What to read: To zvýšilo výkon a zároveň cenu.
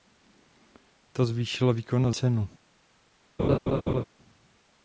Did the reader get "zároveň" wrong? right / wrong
wrong